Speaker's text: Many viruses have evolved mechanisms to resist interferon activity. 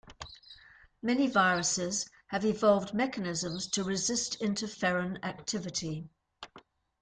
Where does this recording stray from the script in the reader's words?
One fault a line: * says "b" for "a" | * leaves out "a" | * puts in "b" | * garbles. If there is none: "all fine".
all fine